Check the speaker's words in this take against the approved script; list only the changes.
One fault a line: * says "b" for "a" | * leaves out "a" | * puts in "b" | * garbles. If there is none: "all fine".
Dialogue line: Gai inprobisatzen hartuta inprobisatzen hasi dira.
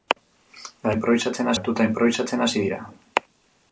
all fine